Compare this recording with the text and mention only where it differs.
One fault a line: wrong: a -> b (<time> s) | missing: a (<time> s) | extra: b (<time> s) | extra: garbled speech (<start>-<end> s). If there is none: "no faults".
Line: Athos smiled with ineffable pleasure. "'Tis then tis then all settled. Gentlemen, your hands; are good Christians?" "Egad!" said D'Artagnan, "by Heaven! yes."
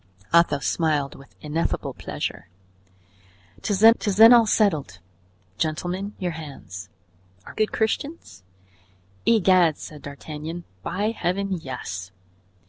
no faults